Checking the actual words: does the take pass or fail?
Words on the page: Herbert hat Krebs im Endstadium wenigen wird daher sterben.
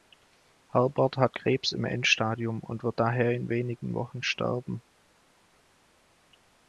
fail